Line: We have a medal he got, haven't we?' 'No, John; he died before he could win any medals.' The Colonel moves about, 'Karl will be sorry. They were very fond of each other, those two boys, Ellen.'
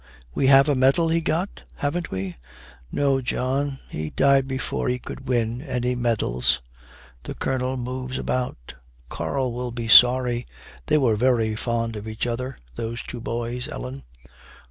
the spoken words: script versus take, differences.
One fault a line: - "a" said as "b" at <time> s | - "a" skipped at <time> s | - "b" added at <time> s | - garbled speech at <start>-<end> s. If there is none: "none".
none